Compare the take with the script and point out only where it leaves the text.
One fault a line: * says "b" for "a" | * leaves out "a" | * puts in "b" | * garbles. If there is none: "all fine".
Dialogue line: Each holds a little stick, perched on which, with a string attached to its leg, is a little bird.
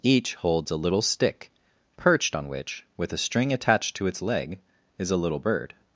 all fine